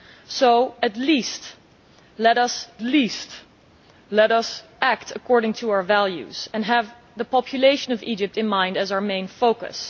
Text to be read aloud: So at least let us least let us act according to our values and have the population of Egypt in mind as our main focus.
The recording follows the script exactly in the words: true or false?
true